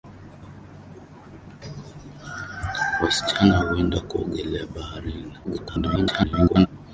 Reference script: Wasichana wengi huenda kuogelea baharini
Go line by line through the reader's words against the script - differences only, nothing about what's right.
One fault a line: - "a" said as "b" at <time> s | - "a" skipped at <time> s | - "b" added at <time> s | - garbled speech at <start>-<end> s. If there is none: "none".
- "wengi" skipped at 3.6 s
- garbled speech at 5.4-6.7 s